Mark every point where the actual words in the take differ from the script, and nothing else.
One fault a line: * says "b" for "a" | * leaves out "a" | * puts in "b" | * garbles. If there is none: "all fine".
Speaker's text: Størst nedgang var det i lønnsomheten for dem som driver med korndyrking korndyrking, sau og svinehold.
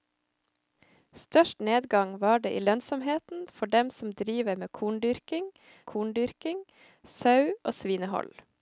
all fine